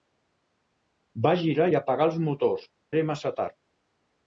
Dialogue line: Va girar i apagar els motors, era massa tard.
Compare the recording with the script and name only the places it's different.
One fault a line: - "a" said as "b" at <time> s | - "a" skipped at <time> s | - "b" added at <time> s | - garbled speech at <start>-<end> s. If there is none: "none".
none